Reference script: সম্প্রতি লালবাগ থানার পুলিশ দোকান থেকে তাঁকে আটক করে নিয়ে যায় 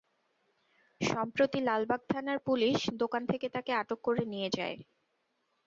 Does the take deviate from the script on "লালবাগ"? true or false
false